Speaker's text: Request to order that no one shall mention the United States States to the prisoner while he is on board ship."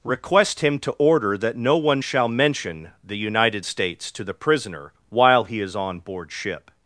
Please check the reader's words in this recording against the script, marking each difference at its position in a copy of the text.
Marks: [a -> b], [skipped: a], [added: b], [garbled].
Request [added: him] to order that no one shall mention the United States [skipped: States] to the prisoner while he is on board ship."